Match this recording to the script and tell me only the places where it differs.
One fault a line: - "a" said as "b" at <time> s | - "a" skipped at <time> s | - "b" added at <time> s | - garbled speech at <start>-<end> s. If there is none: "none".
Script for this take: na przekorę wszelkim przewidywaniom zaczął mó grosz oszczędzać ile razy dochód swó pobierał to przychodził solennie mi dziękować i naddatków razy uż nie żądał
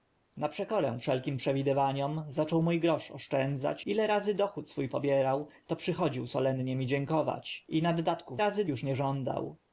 none